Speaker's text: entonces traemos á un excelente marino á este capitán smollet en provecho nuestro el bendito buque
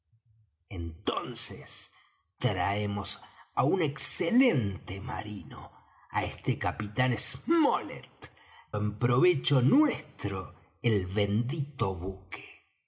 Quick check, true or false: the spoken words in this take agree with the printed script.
true